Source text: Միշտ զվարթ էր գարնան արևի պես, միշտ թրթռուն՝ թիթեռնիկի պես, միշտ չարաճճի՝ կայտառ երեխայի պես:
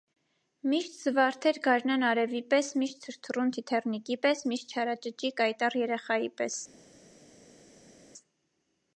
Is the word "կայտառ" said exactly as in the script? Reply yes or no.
yes